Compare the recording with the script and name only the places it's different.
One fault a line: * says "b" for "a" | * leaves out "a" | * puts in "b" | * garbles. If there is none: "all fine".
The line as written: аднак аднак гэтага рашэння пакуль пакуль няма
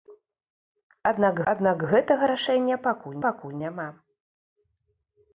all fine